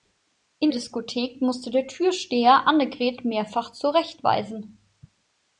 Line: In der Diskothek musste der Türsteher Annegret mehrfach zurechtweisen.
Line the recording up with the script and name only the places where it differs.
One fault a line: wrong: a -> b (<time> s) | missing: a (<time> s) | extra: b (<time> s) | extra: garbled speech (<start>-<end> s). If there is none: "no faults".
missing: der (0.7 s)